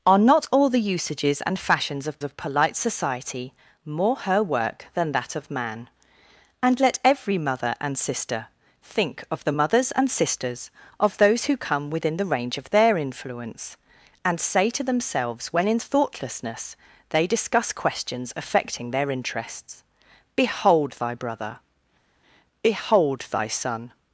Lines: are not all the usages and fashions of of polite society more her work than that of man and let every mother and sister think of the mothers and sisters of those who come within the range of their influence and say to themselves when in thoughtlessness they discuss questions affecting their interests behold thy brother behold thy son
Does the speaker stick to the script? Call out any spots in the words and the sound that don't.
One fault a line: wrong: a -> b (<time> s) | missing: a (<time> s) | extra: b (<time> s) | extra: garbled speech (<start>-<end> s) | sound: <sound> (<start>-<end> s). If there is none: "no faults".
no faults